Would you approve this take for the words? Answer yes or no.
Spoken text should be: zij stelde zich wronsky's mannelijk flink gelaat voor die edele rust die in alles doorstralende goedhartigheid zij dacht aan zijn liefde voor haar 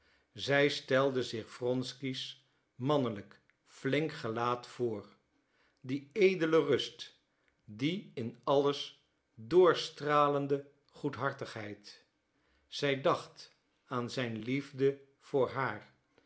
yes